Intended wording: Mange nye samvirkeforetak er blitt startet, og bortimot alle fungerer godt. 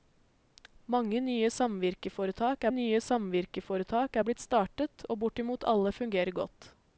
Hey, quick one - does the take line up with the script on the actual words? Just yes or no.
no